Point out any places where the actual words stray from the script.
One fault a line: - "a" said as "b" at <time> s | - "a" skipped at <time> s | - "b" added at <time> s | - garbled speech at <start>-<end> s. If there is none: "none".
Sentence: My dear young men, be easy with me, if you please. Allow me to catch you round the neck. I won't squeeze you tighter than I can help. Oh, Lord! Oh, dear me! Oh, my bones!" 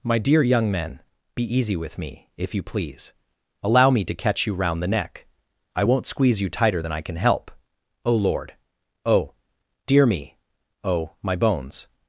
none